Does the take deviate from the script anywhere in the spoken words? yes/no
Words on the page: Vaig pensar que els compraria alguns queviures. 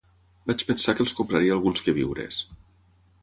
no